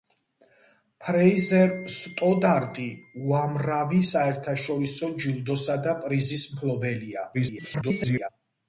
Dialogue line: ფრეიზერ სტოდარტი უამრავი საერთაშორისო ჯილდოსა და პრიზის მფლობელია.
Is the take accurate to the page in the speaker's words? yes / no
no